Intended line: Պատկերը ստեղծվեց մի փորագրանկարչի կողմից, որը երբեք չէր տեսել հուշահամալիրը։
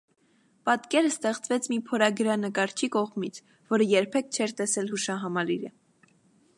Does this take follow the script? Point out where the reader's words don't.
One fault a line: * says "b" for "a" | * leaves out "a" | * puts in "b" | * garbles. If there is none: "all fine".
all fine